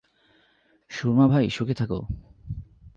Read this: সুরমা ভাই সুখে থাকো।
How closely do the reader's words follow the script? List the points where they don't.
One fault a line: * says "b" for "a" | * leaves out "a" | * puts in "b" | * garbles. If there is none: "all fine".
all fine